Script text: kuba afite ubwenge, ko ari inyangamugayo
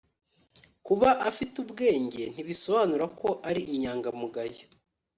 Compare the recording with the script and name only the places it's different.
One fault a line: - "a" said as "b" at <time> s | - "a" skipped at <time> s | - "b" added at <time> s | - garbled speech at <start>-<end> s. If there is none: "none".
- "ntibisobanura" added at 2.3 s